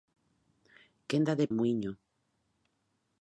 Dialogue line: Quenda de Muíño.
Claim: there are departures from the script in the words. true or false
false